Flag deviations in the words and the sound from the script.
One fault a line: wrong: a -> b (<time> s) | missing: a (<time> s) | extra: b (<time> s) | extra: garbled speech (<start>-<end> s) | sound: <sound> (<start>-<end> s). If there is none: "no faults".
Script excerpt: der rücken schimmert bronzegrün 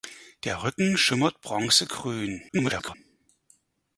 extra: garbled speech (2.5-2.9 s)